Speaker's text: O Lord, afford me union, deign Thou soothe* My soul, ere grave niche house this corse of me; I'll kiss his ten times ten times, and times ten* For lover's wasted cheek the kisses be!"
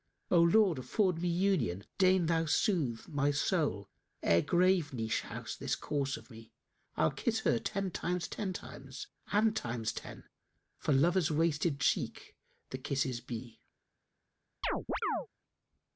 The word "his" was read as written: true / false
false